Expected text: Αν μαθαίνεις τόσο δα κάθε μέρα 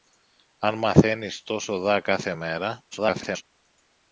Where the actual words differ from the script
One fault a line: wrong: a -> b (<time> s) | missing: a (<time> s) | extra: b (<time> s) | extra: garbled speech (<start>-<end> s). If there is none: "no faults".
extra: garbled speech (2.9-3.4 s)